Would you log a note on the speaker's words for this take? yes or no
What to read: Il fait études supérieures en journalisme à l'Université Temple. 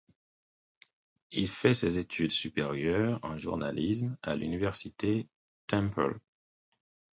yes